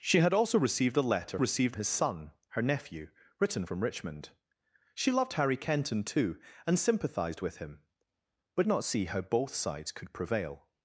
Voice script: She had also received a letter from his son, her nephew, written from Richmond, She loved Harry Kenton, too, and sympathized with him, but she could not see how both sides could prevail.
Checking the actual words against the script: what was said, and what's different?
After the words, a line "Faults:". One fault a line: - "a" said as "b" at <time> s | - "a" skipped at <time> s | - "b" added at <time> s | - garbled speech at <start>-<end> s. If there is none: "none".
She had also received a letter received his son, her nephew, written from Richmond, She loved Harry Kenton, too, and sympathized with him, but not see how both sides could prevail.
Faults:
- "from" said as "received" at 1.4 s
- "she could" skipped at 8.7 s